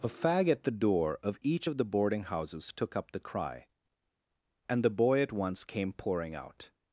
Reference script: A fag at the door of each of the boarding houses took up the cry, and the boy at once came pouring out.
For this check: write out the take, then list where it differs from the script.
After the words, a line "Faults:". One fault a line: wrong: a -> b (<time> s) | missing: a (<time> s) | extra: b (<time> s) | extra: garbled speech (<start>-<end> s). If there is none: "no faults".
A fag at the door of each of the boarding houses took up the cry, and the boy at once came pouring out.
Faults:
no faults